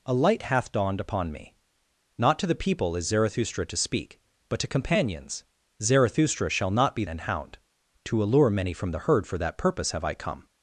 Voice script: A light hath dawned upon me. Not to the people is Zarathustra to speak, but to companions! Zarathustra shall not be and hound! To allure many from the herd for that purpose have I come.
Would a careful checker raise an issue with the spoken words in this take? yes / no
no